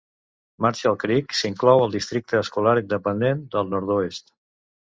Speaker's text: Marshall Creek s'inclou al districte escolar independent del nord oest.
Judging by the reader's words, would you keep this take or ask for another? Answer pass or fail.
pass